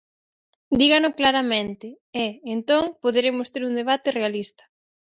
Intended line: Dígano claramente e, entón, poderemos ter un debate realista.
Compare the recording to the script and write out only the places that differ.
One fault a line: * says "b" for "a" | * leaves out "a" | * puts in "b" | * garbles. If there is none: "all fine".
all fine